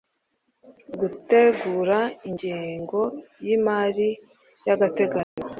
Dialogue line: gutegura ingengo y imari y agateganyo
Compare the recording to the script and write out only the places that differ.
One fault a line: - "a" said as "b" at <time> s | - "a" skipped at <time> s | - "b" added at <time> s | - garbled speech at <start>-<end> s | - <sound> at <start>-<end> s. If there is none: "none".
- dropout at 5.2-5.4 s